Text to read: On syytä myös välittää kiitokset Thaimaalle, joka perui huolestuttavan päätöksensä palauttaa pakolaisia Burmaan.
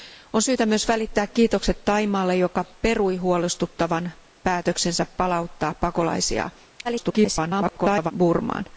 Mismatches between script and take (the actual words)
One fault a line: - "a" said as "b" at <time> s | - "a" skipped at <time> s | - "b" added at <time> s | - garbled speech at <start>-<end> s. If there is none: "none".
- garbled speech at 6.8-8.1 s